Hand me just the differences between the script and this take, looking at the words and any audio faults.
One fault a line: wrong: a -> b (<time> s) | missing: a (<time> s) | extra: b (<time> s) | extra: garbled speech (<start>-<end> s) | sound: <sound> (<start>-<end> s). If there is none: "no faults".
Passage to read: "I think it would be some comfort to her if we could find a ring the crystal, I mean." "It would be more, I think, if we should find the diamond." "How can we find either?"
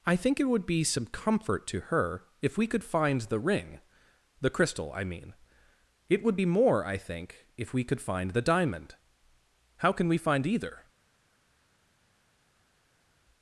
wrong: a -> the (3.2 s)
wrong: should -> could (7.8 s)